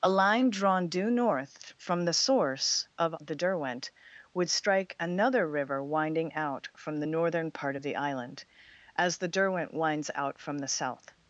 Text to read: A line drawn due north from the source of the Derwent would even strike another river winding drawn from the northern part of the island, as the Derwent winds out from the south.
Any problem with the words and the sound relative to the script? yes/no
yes